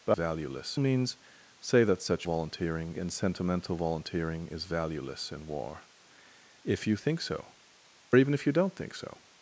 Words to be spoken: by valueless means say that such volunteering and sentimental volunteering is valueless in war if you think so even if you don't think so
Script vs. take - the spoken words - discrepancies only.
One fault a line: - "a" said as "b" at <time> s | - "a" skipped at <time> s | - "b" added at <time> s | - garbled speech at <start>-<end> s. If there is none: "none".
none